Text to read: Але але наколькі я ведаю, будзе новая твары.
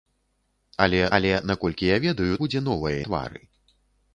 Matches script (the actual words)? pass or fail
pass